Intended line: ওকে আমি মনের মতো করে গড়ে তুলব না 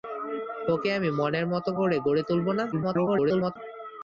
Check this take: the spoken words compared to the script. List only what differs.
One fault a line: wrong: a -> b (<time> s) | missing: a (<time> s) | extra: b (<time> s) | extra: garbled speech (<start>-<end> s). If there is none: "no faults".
extra: garbled speech (2.7-3.6 s)